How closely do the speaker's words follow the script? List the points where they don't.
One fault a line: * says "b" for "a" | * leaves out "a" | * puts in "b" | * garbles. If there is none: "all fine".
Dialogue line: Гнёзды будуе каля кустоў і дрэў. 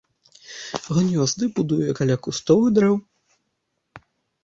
all fine